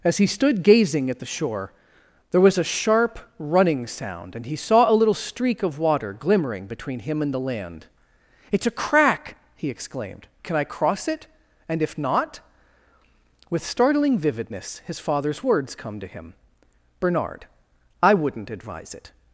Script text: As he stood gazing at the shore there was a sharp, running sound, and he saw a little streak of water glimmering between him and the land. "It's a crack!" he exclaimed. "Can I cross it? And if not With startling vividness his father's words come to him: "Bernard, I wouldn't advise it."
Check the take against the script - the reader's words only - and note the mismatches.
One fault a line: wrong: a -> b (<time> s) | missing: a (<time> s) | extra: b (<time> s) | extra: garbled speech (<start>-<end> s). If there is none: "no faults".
no faults